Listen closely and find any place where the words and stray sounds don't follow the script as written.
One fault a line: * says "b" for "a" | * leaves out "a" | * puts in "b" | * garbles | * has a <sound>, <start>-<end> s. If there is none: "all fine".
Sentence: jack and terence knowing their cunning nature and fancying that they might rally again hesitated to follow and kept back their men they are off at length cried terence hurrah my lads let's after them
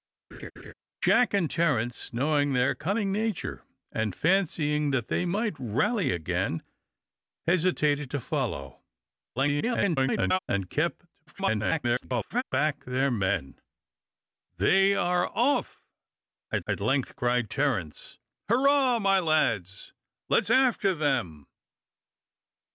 * has a laugh, 0.3-0.7 s
* garbles
* garbles
* puts in "at"